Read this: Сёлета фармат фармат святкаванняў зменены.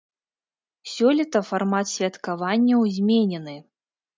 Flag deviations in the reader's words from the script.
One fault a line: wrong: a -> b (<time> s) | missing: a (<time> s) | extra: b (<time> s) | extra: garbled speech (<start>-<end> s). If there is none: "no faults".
missing: фармат (1.9 s)